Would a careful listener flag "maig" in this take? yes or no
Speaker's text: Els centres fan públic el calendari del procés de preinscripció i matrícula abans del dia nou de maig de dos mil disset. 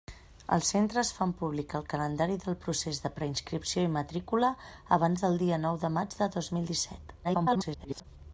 no